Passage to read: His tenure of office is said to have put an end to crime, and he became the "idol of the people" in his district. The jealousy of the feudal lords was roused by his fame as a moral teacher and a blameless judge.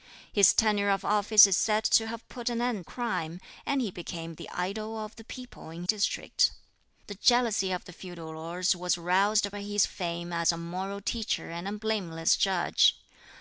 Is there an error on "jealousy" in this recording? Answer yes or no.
no